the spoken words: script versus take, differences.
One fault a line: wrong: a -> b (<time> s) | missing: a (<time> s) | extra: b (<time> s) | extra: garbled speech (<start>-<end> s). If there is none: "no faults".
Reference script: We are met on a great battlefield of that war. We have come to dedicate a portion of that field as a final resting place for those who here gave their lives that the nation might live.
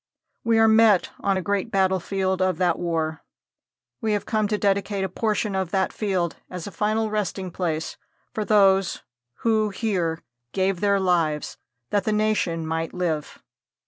no faults